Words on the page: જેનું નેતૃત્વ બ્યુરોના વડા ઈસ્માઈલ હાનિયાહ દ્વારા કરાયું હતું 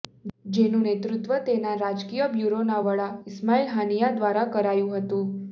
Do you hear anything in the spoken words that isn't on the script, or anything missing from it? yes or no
yes